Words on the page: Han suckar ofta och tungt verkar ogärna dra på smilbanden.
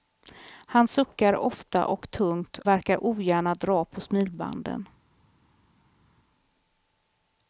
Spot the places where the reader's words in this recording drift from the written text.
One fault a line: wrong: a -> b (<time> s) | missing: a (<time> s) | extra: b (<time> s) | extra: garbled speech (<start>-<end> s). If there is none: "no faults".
no faults